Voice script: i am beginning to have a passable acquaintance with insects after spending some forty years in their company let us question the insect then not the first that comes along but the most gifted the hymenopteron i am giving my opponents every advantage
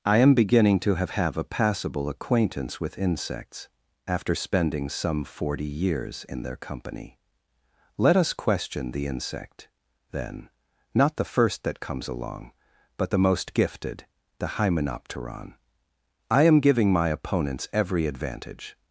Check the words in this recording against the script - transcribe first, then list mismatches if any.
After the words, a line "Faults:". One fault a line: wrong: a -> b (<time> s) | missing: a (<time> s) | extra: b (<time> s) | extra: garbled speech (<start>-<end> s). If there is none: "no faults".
i am beginning to have have a passable acquaintance with insects after spending some forty years in their company let us question the insect then not the first that comes along but the most gifted the hymenopteron i am giving my opponents every advantage
Faults:
extra: have (1.1 s)